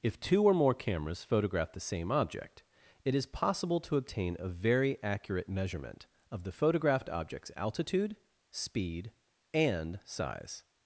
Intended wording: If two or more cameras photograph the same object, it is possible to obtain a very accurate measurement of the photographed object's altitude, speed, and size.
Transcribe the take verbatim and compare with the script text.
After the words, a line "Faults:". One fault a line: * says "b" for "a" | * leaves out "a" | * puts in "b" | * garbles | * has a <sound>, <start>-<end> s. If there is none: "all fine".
If two or more cameras photograph the same object, it is possible to obtain a very accurate measurement of the photographed object's altitude, speed, and size.
Faults:
all fine